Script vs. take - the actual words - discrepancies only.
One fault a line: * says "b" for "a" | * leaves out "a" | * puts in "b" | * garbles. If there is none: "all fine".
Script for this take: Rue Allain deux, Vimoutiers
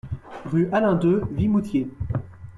all fine